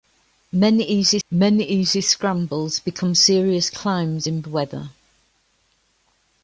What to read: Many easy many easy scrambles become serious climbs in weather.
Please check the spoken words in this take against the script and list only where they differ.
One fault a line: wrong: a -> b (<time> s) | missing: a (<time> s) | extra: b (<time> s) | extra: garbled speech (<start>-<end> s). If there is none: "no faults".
no faults